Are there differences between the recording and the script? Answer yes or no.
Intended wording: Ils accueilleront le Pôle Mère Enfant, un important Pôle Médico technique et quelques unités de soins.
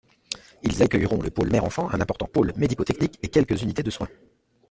no